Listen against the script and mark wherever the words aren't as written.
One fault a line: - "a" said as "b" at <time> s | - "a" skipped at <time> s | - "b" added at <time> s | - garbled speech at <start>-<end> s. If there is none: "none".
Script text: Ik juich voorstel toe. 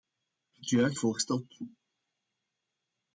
none